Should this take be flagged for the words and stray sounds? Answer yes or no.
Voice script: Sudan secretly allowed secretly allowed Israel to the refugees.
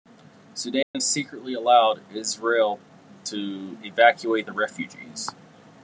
yes